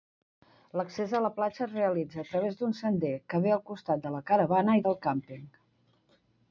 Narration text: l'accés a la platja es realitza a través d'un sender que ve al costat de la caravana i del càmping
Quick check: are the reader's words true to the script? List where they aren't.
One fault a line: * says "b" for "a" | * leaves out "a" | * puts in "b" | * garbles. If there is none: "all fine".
all fine